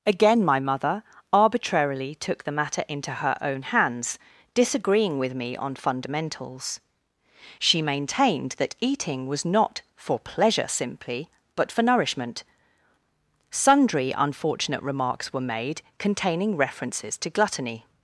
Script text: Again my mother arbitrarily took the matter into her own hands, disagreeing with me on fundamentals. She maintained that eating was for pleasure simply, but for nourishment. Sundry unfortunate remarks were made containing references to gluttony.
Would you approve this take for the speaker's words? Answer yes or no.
no